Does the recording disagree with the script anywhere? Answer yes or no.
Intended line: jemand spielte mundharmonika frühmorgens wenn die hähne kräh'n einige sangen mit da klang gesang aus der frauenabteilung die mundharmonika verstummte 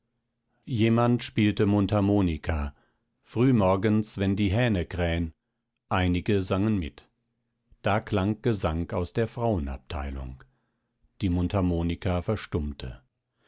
no